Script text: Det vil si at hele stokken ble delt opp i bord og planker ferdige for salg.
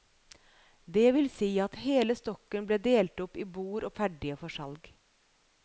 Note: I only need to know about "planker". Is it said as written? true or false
false